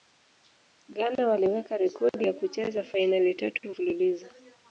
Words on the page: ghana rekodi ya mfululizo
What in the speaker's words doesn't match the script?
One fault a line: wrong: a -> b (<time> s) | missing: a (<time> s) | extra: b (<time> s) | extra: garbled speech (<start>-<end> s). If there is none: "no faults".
extra: waliweka (1.3 s)
extra: kucheza fainali tatu (2.3 s)